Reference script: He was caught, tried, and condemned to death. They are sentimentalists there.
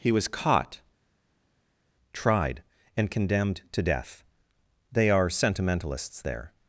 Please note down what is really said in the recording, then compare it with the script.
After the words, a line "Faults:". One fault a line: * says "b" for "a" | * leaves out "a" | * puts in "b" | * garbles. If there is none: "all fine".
He was caught, tried, and condemned to death. They are sentimentalists there.
Faults:
all fine